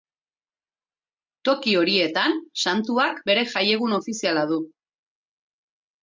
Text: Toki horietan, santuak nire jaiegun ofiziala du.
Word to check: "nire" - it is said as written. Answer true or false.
false